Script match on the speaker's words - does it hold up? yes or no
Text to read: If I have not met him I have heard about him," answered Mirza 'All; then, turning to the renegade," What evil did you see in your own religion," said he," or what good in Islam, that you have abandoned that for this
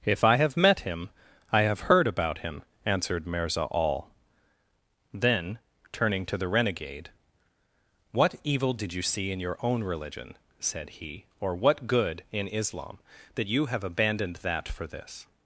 no